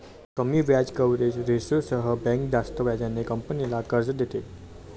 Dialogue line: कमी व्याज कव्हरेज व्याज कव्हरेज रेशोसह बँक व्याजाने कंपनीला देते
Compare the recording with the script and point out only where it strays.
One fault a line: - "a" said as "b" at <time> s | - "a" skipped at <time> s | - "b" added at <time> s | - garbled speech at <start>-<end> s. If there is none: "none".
- "व्याज कव्हरेज" skipped at 1.4 s
- "जास्त" added at 2.5 s
- "कर्ज" added at 3.9 s